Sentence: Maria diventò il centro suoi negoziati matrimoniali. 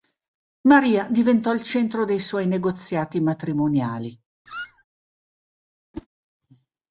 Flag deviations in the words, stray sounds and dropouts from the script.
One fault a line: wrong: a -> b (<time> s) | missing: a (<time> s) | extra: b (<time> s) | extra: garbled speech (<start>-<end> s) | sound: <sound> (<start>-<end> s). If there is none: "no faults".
extra: dei (2.0 s)
sound: squeak (4.5-4.8 s)
sound: whoosh (5.9-6.1 s)